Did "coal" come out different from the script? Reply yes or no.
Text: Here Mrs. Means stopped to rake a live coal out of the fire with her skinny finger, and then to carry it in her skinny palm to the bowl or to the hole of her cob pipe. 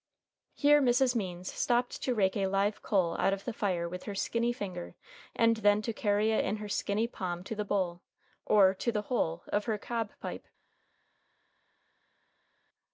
no